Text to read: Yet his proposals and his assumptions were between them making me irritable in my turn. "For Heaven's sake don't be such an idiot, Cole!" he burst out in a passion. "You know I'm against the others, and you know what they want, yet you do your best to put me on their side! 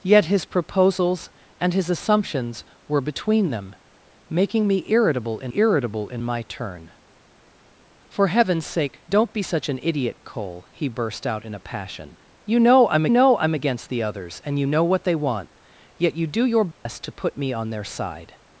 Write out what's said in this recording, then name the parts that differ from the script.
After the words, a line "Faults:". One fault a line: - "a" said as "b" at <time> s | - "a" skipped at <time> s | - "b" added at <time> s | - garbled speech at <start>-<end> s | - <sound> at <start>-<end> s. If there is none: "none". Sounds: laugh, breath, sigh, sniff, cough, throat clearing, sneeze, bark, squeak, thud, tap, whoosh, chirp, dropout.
Yet his proposals and his assumptions were between them making me irritable in irritable in my turn. "For Heaven's sake don't be such an idiot, Cole!" he burst out in a passion. "You know I'm know I'm against the others, and you know what they want, yet you do your best to put me on their side!
Faults:
- "irritable in" added at 5.5 s
- "know I'm" added at 13.1 s
- dropout at 16.7-16.9 s